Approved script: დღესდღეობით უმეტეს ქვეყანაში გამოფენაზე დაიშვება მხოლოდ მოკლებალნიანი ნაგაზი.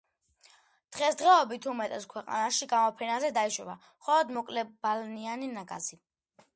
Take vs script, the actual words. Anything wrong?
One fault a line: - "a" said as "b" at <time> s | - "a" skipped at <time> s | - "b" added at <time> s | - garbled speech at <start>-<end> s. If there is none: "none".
none